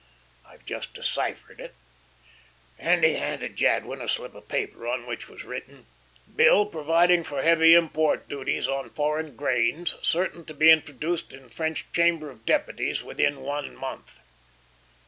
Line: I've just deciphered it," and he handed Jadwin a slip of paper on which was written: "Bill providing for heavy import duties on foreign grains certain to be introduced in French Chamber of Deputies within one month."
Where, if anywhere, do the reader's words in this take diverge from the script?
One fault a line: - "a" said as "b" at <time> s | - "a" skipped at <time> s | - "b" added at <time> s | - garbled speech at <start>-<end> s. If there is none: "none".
none